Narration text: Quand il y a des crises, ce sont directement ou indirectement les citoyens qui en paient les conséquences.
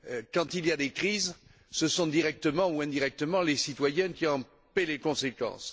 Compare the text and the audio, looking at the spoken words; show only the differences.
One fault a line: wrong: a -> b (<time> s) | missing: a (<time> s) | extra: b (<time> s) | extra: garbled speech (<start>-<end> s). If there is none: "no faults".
no faults